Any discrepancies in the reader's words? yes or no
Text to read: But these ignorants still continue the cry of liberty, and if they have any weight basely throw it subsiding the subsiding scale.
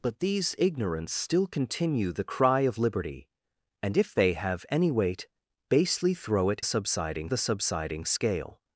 no